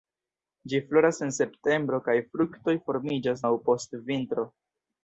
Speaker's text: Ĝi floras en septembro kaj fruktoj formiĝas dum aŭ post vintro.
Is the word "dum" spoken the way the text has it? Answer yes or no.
no